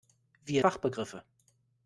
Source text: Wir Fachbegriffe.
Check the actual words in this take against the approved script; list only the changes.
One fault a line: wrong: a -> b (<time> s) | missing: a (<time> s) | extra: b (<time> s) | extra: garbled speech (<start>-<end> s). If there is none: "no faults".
no faults